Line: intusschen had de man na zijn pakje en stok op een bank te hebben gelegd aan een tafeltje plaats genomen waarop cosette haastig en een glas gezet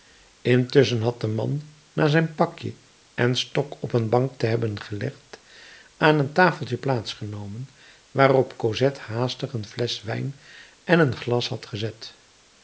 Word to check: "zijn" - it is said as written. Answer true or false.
true